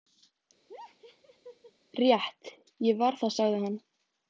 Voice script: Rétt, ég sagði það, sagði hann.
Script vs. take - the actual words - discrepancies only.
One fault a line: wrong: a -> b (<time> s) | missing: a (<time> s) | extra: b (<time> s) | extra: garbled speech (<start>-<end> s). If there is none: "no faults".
wrong: sagði -> var (3.0 s)